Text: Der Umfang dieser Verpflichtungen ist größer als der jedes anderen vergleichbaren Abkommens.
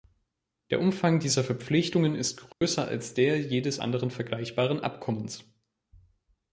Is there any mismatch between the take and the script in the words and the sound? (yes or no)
yes